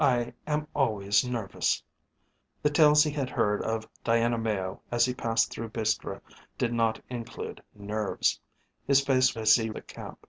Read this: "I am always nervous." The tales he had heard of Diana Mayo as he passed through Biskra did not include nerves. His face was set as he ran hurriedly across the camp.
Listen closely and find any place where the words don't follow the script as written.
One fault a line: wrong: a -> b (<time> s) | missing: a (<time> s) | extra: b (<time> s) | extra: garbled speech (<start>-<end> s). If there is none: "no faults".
missing: was set (9.4 s)
missing: ran hurriedly across (9.7 s)